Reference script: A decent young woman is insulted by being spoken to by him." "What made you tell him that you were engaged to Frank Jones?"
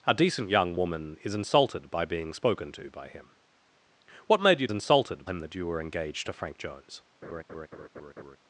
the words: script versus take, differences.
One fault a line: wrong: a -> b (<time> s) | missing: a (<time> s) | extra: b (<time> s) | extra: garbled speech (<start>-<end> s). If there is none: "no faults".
wrong: tell -> insulted (4.7 s)